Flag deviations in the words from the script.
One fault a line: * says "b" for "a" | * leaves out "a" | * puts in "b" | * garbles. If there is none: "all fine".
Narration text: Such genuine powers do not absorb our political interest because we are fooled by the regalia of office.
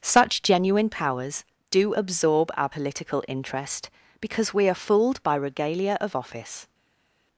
* leaves out "not"
* leaves out "the"